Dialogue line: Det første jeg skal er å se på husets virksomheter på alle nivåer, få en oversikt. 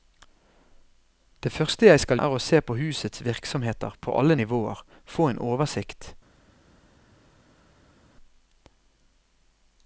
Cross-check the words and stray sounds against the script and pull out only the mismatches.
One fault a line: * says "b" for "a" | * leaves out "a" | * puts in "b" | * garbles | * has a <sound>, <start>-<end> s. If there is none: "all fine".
all fine